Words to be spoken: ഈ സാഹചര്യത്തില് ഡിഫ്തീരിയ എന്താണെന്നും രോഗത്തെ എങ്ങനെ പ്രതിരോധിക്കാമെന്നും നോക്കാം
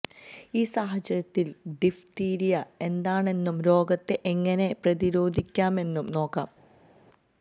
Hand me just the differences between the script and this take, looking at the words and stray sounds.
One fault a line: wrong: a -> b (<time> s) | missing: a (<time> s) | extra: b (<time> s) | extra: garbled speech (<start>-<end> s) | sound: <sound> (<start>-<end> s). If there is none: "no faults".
no faults